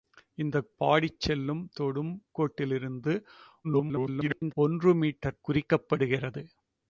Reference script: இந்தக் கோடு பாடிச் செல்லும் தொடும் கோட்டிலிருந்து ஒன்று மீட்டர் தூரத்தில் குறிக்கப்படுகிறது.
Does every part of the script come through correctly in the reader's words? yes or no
no